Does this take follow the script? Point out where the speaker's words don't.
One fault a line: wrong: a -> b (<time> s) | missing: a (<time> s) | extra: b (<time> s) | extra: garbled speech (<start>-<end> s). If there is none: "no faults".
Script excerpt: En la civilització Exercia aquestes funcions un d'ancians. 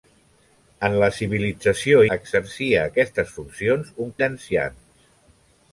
no faults